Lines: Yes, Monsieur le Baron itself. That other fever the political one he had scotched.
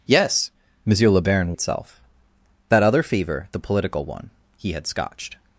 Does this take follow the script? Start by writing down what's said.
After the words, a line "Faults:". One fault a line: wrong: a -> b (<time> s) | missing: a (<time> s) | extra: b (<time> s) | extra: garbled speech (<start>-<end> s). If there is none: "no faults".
Yes, Monsieur le Baron itself. That other fever the political one he had scotched.
Faults:
no faults